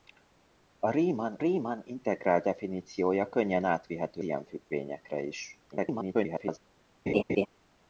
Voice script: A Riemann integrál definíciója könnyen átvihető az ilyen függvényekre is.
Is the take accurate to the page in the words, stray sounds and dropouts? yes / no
no